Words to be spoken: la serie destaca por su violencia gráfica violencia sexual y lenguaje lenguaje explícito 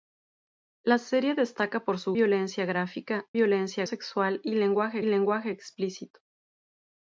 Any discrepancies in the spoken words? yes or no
no